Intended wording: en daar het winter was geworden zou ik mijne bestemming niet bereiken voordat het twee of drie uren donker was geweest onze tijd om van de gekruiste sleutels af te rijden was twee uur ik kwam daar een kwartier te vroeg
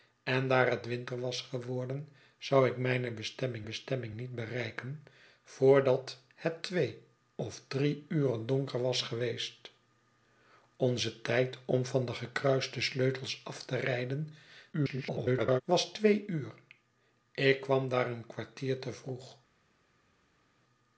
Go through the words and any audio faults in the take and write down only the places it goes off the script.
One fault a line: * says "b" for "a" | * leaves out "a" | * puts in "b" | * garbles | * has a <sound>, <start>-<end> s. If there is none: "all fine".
* puts in "bestemming"
* garbles